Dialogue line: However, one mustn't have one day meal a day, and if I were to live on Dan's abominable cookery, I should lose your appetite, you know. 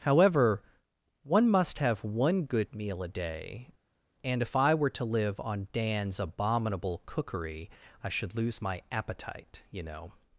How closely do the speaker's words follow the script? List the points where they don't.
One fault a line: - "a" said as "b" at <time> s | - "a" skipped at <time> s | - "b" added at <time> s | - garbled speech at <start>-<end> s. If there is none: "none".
- "mustn't" said as "must" at 1.5 s
- "day" said as "good" at 2.5 s
- "your" said as "my" at 8.6 s